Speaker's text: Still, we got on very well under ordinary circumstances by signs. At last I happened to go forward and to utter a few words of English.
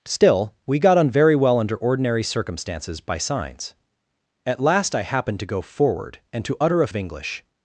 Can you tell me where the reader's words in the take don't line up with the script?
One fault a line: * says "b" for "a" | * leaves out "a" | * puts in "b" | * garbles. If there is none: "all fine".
* leaves out "few words"